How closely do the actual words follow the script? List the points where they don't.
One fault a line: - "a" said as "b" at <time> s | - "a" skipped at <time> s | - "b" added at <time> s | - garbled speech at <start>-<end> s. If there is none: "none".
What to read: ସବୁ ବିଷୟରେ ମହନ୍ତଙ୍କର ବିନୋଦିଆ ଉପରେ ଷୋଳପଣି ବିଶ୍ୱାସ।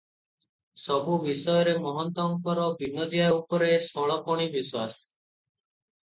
none